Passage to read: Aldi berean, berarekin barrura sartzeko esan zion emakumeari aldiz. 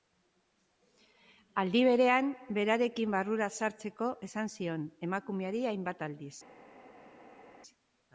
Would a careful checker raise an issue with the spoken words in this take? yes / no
yes